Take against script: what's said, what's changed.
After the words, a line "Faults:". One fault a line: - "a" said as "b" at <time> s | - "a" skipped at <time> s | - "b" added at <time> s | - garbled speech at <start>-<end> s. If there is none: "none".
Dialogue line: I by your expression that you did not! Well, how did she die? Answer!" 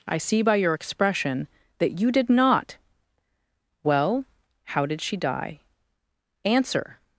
I see by your expression that you did not! Well, how did she die? Answer!"
Faults:
- "see" added at 0.2 s